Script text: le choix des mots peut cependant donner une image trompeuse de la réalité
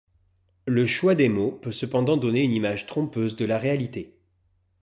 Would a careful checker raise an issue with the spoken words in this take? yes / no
no